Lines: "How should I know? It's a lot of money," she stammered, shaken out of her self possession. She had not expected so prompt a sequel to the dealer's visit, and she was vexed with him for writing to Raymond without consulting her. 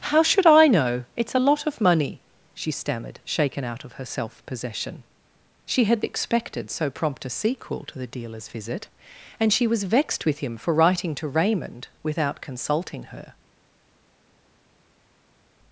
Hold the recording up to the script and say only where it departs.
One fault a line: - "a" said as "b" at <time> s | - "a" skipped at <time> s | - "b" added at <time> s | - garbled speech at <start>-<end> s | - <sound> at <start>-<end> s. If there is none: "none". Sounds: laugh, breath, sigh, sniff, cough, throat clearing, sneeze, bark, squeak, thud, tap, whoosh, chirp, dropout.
- "not" skipped at 6.1 s